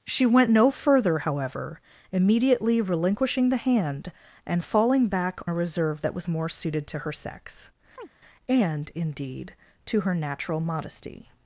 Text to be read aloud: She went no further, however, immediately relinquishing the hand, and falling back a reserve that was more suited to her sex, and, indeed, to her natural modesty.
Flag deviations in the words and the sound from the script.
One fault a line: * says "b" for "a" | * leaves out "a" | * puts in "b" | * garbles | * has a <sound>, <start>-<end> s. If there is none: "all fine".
* has a chirp, 8.0-8.1 s